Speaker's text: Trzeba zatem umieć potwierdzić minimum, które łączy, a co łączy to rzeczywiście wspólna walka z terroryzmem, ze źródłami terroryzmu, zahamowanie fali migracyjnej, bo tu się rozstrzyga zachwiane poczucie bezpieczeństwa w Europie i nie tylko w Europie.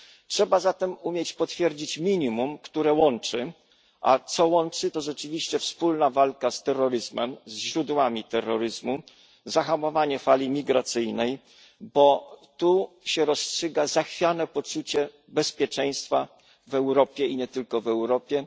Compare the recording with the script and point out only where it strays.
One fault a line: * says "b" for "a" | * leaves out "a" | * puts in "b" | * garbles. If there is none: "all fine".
all fine